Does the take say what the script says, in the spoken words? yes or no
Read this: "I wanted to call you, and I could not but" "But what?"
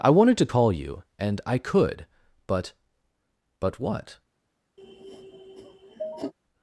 no